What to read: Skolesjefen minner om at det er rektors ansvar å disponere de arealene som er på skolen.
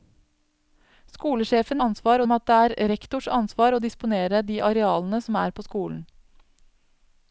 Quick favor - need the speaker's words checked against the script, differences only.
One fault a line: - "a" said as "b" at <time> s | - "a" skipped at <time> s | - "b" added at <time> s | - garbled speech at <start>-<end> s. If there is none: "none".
- "minner" said as "ansvar" at 1.9 s